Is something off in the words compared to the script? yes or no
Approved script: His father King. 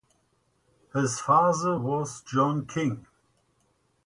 yes